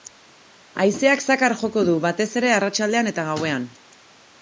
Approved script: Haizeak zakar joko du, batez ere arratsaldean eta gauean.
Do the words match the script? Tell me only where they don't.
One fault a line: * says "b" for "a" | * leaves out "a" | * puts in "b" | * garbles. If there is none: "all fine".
all fine